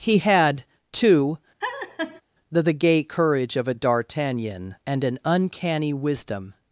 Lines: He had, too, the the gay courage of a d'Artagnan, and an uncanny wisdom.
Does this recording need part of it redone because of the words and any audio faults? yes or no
yes